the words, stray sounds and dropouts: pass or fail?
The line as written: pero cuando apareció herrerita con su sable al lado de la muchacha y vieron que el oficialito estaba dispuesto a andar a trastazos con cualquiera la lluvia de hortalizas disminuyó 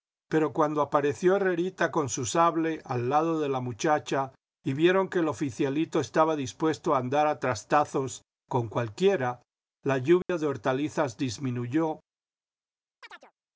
fail